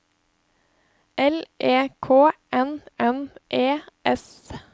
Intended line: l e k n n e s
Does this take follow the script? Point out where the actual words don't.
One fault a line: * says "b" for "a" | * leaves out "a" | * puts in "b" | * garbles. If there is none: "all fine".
all fine